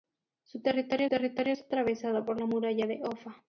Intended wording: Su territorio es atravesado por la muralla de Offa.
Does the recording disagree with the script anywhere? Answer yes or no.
yes